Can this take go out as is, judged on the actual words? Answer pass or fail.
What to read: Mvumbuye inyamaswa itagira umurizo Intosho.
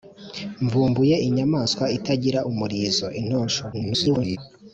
fail